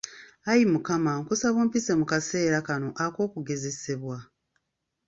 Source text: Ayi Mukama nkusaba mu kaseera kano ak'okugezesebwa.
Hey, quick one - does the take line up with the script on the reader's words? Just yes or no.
no